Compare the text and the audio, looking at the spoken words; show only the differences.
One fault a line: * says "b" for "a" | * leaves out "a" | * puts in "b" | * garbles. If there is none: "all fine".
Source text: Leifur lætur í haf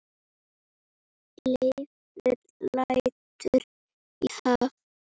* leaves out "í"